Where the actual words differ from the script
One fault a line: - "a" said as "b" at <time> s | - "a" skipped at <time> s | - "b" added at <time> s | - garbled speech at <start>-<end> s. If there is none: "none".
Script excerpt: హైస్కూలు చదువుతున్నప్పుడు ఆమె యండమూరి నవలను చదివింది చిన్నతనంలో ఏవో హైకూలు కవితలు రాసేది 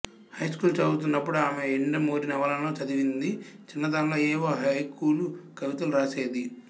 none